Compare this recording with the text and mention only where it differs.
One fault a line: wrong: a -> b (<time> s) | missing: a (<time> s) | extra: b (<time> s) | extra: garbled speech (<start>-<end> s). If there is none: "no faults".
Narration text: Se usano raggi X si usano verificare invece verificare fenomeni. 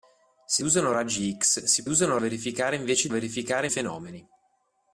no faults